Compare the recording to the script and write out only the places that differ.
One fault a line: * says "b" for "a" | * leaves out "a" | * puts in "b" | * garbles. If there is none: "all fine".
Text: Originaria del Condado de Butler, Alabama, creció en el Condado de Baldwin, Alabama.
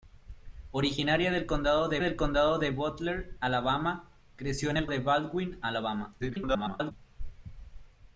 * puts in "del Condado de"
* leaves out "Condado"
* garbles